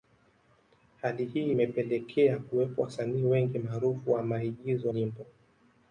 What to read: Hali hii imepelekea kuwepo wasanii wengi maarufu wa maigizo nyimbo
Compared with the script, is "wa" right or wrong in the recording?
right